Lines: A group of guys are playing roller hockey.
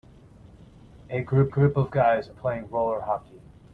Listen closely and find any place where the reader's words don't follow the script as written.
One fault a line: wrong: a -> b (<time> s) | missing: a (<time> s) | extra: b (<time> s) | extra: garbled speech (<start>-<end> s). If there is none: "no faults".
extra: group (1.5 s)
missing: are (2.3 s)